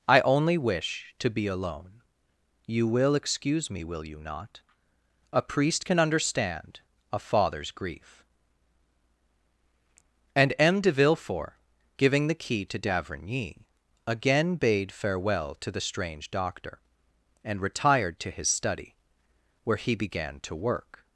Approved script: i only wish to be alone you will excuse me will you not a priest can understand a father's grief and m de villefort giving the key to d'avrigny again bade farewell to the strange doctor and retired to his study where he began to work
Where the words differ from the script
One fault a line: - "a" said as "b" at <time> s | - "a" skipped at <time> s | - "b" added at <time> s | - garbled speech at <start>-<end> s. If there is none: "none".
none